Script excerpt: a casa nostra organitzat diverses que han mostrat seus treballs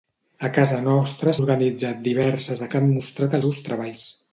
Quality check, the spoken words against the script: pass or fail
pass